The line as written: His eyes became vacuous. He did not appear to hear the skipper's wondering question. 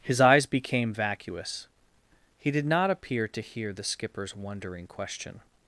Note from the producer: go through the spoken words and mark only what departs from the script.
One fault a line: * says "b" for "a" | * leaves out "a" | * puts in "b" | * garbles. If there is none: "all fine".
all fine